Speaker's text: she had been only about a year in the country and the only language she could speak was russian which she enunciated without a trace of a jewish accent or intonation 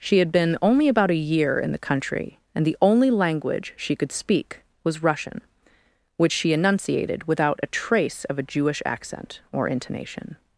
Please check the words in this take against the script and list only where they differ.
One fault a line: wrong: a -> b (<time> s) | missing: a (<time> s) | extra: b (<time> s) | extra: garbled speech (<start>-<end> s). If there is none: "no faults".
no faults